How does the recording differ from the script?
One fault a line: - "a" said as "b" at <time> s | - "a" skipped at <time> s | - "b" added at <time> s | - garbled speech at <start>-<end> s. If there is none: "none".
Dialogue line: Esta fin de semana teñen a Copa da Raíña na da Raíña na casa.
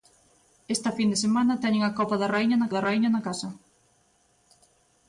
none